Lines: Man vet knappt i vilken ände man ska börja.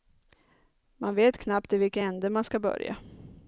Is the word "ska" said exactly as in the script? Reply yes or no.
yes